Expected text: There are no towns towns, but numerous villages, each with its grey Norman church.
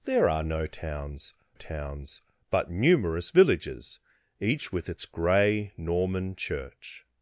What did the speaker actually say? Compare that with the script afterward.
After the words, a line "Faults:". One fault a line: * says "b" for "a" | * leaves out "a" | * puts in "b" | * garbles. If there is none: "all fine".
There are no towns towns, but numerous villages, each with its grey Norman church.
Faults:
all fine